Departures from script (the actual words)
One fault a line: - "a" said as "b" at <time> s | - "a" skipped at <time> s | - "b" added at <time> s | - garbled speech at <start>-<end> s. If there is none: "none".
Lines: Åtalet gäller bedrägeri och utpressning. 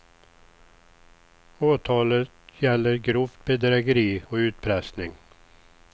- "grovt" added at 3.0 s